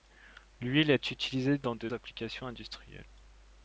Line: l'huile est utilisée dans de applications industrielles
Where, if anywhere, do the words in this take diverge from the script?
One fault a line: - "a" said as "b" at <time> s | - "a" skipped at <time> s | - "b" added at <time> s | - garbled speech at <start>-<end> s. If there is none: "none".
none